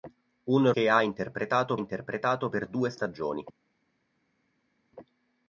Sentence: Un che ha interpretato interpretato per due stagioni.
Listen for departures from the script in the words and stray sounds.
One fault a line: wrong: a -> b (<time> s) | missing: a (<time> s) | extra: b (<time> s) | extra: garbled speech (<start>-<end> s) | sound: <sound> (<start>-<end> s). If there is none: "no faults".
no faults